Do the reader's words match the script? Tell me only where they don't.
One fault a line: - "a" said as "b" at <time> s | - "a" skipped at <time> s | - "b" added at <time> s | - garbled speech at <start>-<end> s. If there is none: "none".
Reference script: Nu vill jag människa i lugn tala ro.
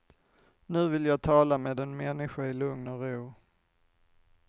- "tala med en" added at 1.2 s
- "tala" said as "och" at 2.9 s